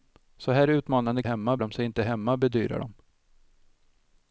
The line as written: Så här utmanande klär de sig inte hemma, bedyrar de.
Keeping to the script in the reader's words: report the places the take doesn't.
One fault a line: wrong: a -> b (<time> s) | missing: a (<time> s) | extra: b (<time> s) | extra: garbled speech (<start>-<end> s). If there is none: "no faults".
wrong: klär -> hemma (1.2 s)